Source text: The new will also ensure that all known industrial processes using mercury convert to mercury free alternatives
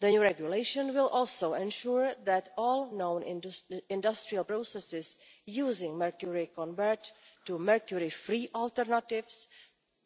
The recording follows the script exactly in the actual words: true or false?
false